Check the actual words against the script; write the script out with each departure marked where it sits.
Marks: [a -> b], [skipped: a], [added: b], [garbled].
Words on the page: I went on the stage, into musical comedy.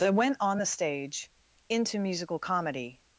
[I -> that] went on the stage, into musical comedy.